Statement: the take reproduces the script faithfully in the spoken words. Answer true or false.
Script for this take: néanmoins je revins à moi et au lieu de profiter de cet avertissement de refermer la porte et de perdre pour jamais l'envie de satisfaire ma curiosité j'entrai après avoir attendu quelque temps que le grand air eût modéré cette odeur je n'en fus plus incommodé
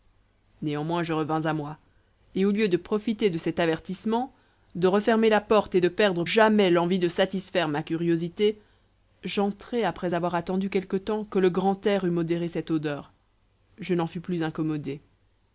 false